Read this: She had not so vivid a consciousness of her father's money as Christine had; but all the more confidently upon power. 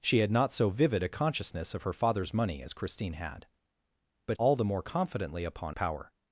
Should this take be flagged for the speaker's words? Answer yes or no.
no